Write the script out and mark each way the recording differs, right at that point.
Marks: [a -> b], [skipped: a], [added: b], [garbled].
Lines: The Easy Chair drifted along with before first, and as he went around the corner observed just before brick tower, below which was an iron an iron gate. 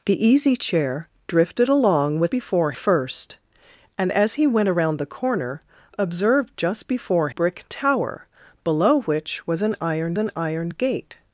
The Easy Chair drifted along with before first, and as he went around the corner observed just before brick tower, below which was an iron an iron gate.